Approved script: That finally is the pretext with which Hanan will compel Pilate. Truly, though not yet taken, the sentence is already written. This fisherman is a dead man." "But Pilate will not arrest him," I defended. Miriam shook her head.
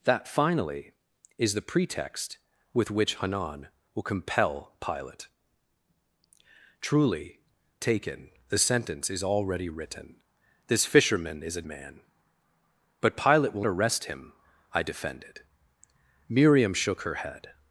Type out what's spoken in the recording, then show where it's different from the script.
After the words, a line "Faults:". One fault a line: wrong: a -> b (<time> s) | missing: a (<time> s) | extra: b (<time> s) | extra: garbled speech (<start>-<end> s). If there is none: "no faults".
That finally is the pretext with which Hanan will compel Pilate. Truly, taken, the sentence is already written. This fisherman is a man." "But Pilate will arrest him," I defended. Miriam shook her head.
Faults:
missing: though not yet (7.4 s)
missing: dead (11.6 s)
missing: not (13.7 s)